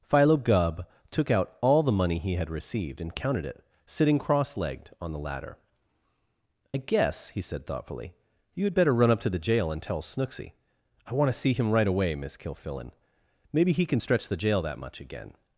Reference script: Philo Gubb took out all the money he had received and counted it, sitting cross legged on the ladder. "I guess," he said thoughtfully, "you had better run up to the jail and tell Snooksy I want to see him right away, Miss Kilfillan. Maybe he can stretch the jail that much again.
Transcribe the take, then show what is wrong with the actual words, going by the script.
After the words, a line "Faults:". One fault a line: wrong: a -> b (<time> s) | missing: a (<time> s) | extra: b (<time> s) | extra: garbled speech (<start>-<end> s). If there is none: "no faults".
Philo Gubb took out all the money he had received and counted it, sitting cross legged on the ladder. "I guess," he said thoughtfully, "you had better run up to the jail and tell Snooksy I want to see him right away, Miss Kilfillan. Maybe he can stretch the jail that much again.
Faults:
no faults